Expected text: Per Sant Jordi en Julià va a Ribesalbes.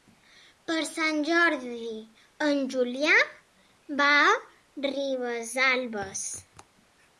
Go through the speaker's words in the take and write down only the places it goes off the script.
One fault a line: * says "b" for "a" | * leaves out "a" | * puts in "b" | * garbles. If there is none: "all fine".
all fine